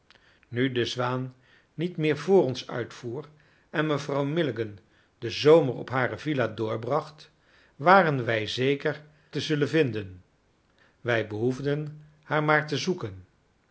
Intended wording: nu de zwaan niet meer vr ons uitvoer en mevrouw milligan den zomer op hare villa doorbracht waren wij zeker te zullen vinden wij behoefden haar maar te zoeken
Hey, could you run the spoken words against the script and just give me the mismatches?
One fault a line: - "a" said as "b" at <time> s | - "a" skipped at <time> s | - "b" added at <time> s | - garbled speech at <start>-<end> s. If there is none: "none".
none